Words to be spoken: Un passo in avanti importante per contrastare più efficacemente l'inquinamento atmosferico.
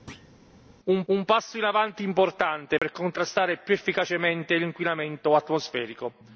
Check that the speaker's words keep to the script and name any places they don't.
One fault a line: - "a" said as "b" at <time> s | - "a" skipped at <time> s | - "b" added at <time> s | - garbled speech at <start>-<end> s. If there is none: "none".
- "un" added at 1.1 s